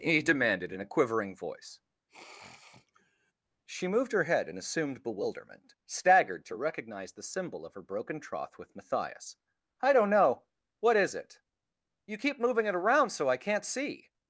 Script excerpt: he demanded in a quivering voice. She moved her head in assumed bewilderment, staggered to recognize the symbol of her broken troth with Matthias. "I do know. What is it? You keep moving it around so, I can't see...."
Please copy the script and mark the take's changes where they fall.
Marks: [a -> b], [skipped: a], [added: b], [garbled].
he demanded in a quivering voice. She moved her head in assumed bewilderment, staggered to recognize the symbol of her broken troth with Matthias. "I [do -> don't] know. What is it? You keep moving it around so, I can't see...."